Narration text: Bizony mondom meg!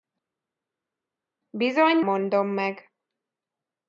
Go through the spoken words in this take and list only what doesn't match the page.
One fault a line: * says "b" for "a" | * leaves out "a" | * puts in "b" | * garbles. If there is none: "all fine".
all fine